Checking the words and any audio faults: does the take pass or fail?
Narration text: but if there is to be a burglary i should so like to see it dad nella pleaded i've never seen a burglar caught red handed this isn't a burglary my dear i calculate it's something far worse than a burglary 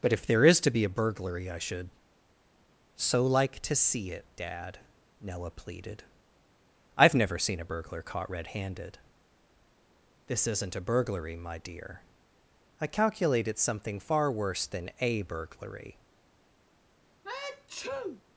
fail